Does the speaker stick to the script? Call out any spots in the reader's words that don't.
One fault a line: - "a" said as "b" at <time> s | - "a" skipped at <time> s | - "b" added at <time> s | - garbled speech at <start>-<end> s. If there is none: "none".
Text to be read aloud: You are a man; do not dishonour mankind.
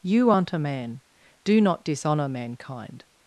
- "are" said as "aren't" at 0.3 s